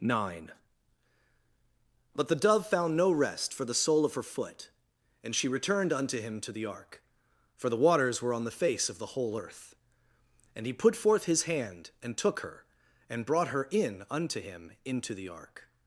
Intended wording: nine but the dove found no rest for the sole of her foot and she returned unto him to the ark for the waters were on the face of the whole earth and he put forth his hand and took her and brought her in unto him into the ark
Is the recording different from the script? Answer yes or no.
no